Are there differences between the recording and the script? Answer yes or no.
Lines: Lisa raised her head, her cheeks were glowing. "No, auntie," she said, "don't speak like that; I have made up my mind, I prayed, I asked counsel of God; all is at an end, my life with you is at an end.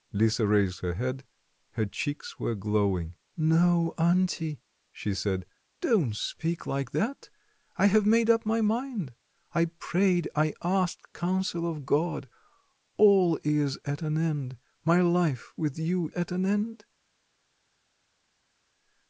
yes